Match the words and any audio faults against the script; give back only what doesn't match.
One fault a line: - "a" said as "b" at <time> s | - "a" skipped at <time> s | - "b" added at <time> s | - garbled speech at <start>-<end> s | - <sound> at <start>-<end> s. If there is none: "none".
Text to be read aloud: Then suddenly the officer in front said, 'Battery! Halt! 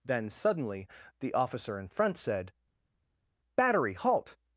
none